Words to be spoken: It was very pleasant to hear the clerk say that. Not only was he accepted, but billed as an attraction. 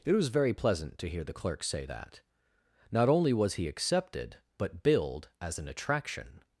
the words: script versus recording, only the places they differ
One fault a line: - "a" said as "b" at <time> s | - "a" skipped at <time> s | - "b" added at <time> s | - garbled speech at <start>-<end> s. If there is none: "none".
none